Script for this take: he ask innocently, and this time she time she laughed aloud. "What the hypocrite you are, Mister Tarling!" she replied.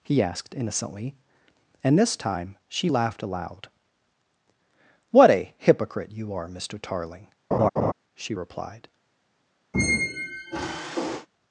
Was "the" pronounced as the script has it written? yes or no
no